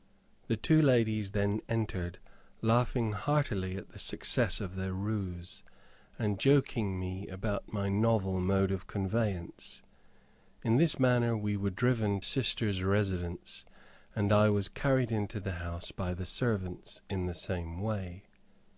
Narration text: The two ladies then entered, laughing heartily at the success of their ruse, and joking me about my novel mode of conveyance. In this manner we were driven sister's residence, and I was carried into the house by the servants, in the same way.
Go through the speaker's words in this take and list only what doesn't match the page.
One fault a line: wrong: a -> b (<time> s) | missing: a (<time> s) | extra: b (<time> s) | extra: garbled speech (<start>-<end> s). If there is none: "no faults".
no faults